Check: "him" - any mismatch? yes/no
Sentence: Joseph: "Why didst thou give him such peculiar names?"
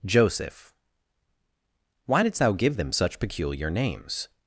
yes